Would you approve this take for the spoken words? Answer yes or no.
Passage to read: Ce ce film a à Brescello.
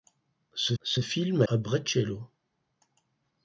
yes